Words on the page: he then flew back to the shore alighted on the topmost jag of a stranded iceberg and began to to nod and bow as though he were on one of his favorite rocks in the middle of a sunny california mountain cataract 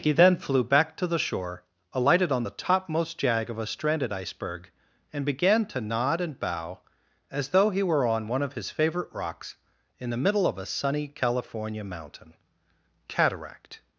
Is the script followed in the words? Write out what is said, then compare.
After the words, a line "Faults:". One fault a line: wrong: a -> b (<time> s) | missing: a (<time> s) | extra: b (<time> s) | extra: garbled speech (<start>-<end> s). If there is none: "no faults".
he then flew back to the shore alighted on the topmost jag of a stranded iceberg and began to nod and bow as though he were on one of his favorite rocks in the middle of a sunny california mountain cataract
Faults:
missing: to (5.8 s)